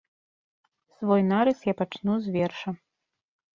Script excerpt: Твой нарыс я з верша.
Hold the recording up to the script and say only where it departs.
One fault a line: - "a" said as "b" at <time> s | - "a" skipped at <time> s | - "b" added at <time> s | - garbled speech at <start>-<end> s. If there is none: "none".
- "Твой" said as "Свой" at 0.9 s
- "пачну" added at 1.8 s